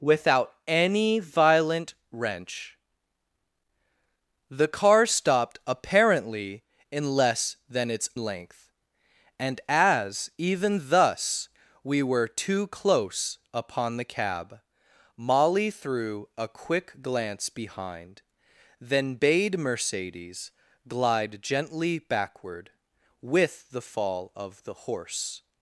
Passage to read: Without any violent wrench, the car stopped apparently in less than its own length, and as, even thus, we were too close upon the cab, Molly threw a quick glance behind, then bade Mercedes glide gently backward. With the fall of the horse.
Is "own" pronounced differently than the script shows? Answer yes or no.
yes